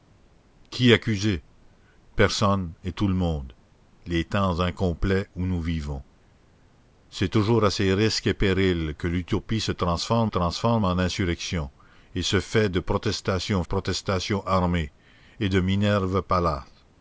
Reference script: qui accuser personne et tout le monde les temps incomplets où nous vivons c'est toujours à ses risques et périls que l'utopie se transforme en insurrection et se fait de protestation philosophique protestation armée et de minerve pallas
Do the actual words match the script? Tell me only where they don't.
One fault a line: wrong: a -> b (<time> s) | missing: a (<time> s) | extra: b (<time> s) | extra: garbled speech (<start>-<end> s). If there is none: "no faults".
extra: transforme (10.2 s)
missing: philosophique (13.6 s)